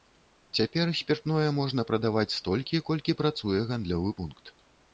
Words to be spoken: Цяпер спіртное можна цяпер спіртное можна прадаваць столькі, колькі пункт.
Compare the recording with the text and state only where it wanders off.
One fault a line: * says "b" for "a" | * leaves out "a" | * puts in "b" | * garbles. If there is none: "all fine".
* leaves out "цяпер спіртное можна"
* puts in "працуе гандлёвы"